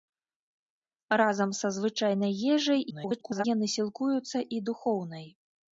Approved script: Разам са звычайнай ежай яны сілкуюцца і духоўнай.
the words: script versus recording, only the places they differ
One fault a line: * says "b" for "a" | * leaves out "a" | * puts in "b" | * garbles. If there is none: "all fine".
* garbles